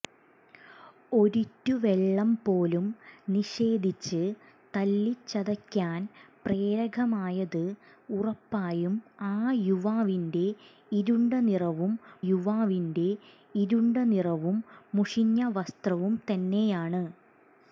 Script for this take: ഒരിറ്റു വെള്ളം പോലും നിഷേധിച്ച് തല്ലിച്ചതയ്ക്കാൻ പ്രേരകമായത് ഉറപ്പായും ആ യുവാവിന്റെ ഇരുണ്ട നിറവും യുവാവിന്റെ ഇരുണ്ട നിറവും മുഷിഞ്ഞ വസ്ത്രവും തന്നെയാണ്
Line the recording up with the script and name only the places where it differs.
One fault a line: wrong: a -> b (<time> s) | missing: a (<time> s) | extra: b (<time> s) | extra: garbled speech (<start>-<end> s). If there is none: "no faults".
no faults